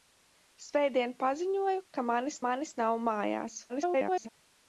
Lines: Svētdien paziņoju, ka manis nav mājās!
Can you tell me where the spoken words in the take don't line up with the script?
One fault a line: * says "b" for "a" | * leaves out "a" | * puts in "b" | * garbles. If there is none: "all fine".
* puts in "manis"
* garbles